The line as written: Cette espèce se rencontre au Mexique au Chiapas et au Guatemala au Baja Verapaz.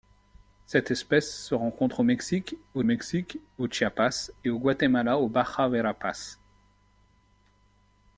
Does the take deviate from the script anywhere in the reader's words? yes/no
yes